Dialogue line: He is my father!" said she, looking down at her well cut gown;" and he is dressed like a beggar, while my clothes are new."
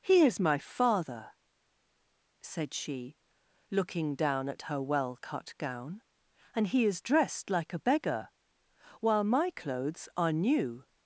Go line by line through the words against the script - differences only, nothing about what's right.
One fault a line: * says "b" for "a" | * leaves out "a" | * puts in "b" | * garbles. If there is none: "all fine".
all fine